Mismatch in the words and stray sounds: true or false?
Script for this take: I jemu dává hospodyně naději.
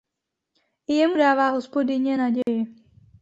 true